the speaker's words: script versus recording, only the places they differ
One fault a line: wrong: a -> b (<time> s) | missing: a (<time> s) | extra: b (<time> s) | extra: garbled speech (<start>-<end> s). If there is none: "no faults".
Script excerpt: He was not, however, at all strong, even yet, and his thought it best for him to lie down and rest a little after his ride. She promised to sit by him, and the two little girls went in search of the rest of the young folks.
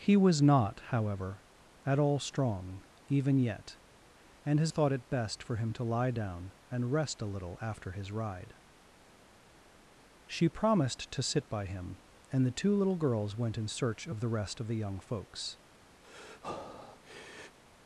no faults